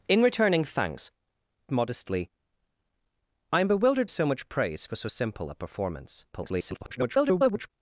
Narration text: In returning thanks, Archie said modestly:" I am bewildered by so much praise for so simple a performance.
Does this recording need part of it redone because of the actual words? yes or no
yes